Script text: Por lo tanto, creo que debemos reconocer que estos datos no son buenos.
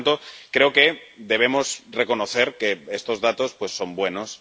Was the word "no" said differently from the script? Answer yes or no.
yes